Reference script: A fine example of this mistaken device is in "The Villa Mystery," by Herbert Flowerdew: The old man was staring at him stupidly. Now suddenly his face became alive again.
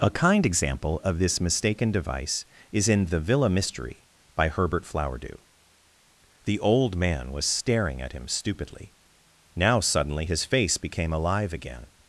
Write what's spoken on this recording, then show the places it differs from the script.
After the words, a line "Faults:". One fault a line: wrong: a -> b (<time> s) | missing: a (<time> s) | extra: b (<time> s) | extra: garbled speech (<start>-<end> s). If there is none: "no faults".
A kind example of this mistaken device is in "The Villa Mystery," by Herbert Flowerdew: The old man was staring at him stupidly. Now suddenly his face became alive again.
Faults:
wrong: fine -> kind (0.1 s)